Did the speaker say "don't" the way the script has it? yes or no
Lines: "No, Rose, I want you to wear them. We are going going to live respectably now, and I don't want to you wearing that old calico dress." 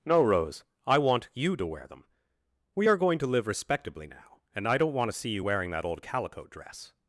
yes